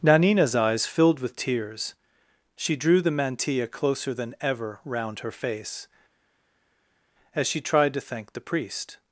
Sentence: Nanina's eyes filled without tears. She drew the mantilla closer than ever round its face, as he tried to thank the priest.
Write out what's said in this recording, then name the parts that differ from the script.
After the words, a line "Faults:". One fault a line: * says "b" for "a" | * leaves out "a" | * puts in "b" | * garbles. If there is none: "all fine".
Nanina's eyes filled with tears. She drew the mantilla closer than ever round her face, as she tried to thank the priest.
Faults:
* says "with" for "without"
* says "her" for "its"
* says "she" for "he"